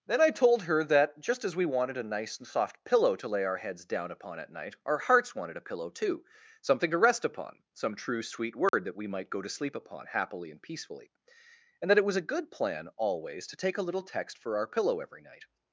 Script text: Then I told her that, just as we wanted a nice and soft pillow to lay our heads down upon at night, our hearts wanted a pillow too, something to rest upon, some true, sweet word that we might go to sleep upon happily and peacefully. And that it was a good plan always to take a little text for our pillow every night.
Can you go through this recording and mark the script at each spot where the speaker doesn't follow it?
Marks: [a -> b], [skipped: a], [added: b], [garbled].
Then I told her that, just as we wanted a nice and soft pillow to lay our heads down upon at night, our hearts wanted a pillow too, something to rest upon, some true, sweet word that we might go to sleep upon happily and peacefully. And that it was a good plan always to take a little text for our pillow every night.